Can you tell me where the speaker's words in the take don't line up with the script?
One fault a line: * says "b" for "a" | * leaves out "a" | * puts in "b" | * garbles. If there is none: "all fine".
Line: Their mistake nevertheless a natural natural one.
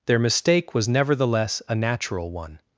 * puts in "was"
* leaves out "natural"